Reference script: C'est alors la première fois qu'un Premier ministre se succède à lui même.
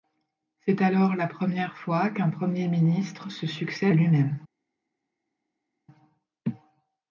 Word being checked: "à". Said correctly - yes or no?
no